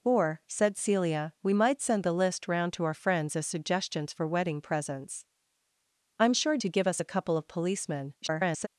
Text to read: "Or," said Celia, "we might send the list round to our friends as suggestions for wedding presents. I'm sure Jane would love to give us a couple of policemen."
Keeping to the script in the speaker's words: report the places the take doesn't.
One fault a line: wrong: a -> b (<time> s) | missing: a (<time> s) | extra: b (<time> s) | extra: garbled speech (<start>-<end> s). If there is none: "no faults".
missing: Jane would love (6.6 s)
extra: garbled speech (8.2-8.7 s)